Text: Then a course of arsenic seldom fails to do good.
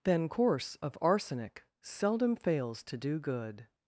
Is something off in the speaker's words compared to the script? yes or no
yes